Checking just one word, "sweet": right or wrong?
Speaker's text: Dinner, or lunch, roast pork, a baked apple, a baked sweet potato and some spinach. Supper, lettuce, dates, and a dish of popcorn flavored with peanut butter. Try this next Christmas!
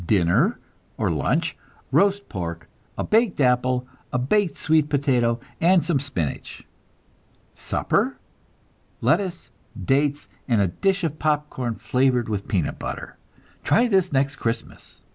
right